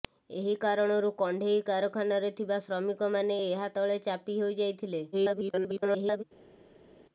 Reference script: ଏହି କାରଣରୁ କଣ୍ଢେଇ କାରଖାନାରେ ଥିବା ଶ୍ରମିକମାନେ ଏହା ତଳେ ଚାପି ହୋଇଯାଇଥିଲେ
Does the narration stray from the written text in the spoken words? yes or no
yes